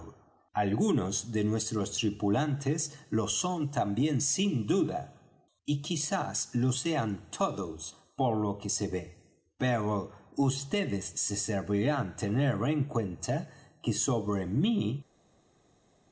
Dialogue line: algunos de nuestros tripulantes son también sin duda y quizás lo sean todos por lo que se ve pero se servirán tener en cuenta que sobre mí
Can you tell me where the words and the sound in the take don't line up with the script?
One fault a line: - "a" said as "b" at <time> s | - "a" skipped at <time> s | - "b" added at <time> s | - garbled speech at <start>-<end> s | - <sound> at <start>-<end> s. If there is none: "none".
- "lo" added at 3.1 s
- "vds" added at 10.4 s